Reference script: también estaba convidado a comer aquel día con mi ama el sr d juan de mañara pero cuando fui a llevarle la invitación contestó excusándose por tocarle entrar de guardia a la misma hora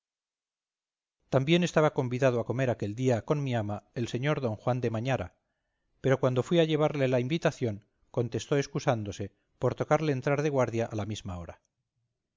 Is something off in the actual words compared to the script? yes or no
no